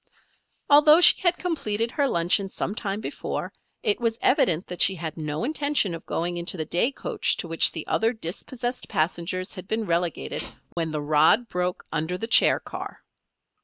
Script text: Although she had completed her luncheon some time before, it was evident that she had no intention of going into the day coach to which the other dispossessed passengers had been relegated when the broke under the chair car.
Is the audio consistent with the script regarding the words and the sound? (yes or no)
no